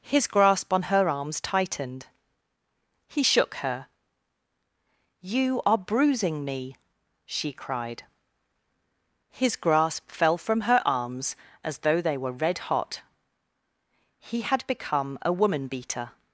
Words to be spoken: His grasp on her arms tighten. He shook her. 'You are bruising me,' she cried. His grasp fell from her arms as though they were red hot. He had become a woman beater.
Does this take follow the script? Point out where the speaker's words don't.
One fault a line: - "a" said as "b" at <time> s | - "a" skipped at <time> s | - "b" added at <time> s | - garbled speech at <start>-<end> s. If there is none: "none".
- "tighten" said as "tightened" at 1.4 s